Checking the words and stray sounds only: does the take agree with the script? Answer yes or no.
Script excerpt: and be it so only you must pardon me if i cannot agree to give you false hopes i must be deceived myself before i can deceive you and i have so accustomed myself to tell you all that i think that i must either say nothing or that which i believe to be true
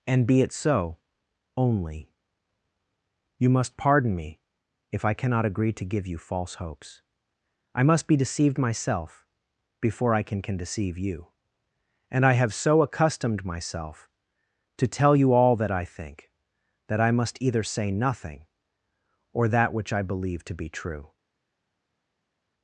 no